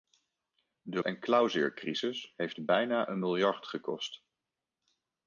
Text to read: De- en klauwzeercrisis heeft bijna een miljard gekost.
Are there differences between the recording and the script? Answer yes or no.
no